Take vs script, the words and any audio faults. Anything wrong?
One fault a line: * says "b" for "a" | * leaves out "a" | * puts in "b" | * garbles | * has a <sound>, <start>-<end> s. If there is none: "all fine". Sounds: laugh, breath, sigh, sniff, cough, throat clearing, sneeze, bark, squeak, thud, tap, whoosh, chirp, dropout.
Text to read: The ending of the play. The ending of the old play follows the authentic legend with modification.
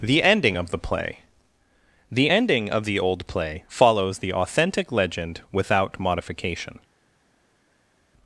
* says "without" for "with"